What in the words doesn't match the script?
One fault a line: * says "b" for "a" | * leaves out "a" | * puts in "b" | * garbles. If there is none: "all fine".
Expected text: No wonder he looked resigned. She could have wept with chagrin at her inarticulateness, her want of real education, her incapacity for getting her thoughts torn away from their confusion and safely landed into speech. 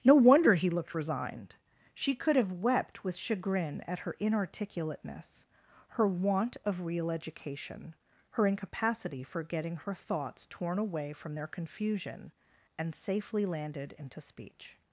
all fine